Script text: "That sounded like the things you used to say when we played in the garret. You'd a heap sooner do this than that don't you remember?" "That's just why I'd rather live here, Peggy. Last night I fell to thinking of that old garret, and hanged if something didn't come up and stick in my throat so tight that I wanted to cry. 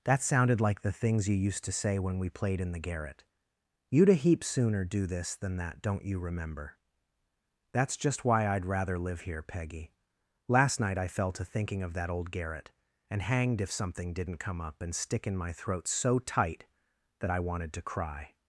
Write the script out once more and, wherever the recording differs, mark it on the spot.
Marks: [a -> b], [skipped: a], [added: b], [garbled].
"That sounded like the things you used to say when we played in the garret. You'd a heap sooner do this than that don't you remember?" "That's just why I'd rather live here, Peggy. Last night I fell to thinking of that old garret, and hanged if something didn't come up and stick in my throat so tight that I wanted to cry.